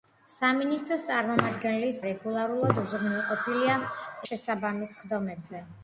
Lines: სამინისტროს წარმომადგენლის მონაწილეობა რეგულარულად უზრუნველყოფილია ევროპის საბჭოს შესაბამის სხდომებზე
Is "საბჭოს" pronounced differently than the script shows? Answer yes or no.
yes